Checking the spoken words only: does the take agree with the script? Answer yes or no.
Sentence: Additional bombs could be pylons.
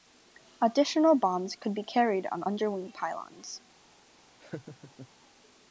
no